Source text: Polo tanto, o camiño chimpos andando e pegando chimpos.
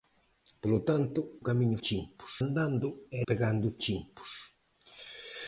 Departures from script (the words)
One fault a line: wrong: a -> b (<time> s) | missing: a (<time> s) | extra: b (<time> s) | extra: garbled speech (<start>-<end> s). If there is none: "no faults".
no faults